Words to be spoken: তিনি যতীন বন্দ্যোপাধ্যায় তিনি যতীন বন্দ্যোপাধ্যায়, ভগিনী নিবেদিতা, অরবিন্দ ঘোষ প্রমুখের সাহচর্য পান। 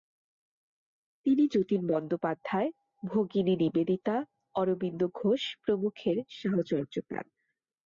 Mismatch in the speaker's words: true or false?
true